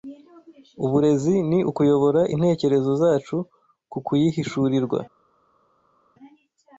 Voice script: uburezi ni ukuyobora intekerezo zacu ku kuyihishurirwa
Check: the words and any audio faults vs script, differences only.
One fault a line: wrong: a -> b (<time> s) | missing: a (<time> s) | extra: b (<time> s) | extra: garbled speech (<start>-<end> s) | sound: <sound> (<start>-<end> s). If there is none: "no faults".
no faults